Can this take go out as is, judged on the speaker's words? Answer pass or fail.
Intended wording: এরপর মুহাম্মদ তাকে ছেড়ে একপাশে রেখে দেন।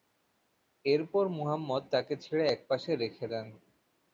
pass